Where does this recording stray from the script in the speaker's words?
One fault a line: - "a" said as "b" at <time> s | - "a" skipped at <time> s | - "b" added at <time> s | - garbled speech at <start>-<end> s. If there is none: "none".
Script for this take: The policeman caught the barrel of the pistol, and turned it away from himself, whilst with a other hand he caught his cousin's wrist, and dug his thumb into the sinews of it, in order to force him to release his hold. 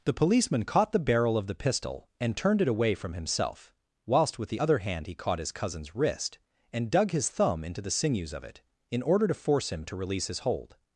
- "a" said as "the" at 4.5 s